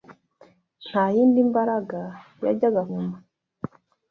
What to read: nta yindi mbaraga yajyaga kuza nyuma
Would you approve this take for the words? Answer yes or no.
no